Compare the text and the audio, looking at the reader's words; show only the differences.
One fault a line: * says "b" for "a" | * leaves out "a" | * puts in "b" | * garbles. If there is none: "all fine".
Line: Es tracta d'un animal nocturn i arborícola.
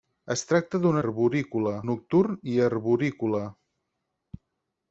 * says "arborícola" for "animal"